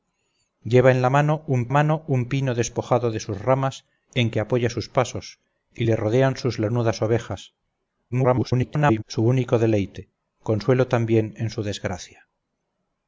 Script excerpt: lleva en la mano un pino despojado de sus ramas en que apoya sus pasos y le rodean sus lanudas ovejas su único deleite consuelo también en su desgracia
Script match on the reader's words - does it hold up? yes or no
no